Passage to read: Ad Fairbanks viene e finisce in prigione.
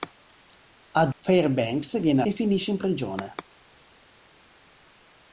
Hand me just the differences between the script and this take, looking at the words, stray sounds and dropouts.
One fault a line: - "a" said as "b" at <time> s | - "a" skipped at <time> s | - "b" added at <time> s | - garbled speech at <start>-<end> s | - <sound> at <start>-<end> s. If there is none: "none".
none